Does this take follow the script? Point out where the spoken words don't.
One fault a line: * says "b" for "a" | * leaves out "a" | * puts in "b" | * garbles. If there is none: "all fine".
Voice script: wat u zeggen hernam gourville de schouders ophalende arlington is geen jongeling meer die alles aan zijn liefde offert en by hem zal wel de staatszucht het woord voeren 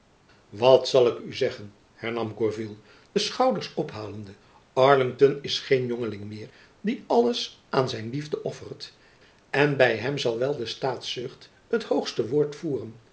* puts in "zal ik"
* puts in "hoogste"